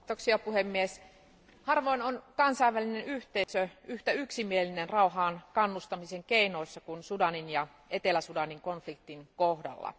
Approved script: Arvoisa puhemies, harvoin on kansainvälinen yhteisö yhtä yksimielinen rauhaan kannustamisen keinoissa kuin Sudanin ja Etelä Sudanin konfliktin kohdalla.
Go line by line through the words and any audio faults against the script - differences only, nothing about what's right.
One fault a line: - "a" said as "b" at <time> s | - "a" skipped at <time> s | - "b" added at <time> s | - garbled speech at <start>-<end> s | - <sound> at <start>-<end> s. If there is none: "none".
- dropout at 3.4-3.5 s